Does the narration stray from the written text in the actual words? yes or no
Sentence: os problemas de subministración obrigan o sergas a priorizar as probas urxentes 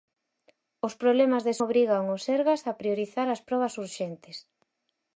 yes